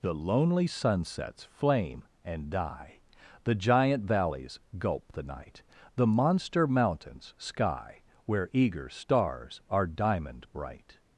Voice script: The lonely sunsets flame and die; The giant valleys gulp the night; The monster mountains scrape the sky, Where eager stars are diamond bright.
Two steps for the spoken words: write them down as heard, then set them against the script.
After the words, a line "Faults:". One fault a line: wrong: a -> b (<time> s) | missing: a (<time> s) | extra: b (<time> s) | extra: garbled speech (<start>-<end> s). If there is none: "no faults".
The lonely sunsets flame and die; The giant valleys gulp the night; The monster mountains sky, Where eager stars are diamond bright.
Faults:
missing: scrape the (7.3 s)